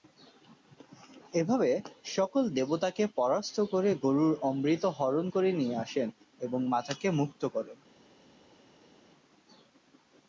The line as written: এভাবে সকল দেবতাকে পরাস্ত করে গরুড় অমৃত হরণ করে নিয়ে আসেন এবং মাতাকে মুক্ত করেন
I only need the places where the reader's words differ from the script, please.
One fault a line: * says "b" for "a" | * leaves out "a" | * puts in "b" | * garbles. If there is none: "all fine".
all fine